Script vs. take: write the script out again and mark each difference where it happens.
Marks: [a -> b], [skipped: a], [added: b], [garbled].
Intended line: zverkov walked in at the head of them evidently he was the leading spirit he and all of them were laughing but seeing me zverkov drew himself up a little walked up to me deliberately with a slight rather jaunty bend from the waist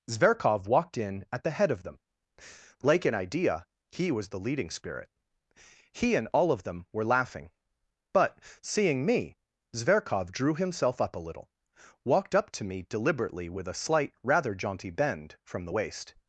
zverkov walked in at the head of them [evidently -> like an idea] he was the leading spirit he and all of them were laughing but seeing me zverkov drew himself up a little walked up to me deliberately with a slight rather jaunty bend from the waist